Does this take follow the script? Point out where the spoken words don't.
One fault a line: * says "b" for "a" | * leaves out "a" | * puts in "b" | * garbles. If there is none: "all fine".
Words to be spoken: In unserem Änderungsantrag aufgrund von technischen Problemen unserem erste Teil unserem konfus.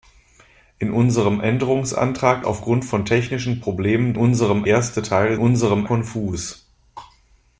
all fine